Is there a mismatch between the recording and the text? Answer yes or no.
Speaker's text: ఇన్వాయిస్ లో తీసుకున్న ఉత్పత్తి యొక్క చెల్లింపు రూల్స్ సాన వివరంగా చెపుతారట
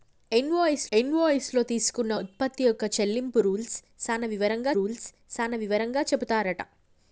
yes